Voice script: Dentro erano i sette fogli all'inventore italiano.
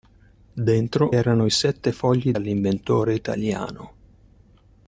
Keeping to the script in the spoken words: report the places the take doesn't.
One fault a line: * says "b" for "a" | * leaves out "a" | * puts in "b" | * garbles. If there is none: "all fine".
all fine